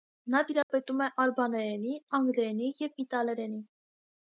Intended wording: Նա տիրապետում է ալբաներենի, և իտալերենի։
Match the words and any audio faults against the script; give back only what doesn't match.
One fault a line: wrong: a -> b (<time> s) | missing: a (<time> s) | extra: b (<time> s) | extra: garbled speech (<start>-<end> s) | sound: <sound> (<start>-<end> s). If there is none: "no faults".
sound: dropout (0.6-0.7 s)
extra: անգլերենի (2.2 s)